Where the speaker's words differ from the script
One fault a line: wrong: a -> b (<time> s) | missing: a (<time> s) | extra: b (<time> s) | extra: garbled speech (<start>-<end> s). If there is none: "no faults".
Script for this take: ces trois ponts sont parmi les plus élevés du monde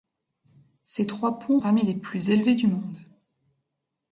missing: sont (1.6 s)